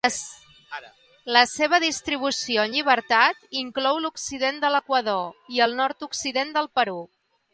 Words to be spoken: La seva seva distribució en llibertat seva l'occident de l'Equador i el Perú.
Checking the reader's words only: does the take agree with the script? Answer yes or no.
no